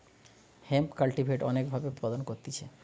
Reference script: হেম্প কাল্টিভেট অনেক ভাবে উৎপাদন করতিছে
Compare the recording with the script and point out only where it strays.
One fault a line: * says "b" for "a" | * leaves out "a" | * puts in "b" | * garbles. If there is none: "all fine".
all fine